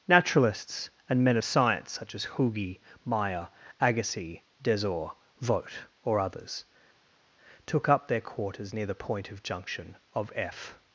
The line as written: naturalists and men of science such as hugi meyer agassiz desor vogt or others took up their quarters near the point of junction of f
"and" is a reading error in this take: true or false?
false